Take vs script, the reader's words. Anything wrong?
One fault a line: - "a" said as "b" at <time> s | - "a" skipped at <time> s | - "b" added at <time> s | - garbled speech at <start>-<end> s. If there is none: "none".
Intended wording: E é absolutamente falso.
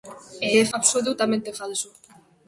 none